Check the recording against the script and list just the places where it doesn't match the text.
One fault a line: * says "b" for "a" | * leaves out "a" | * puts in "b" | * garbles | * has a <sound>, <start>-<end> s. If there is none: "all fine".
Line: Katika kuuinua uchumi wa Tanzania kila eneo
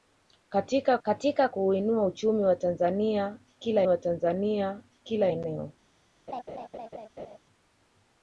* puts in "katika"
* puts in "wa Tanzania kila"
* has a laugh, 6.3-7.4 s